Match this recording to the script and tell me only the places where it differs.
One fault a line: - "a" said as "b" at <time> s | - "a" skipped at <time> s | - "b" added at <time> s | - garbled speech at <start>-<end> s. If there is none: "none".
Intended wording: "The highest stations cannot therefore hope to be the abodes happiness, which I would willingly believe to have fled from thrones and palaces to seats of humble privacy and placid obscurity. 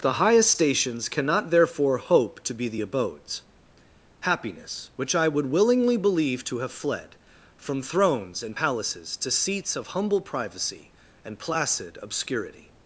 none